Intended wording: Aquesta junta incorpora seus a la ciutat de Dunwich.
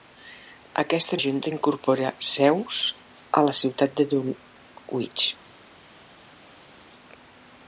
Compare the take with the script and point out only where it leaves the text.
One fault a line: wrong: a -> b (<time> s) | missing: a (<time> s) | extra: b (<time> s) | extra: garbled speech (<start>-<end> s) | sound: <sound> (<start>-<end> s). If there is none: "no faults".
no faults